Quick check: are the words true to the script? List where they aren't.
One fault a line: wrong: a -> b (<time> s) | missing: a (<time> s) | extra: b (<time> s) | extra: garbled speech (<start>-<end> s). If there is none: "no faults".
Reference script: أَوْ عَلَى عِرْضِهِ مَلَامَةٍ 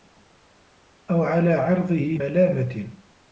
no faults